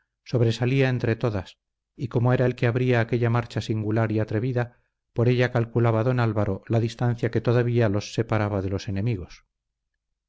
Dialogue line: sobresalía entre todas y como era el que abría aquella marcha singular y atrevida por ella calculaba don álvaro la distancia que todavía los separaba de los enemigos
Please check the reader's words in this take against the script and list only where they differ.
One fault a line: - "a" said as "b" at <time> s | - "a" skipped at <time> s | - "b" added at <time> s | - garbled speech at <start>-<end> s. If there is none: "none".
none